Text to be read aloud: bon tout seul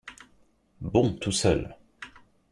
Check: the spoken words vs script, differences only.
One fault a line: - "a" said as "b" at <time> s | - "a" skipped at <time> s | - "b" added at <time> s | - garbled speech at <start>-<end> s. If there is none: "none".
none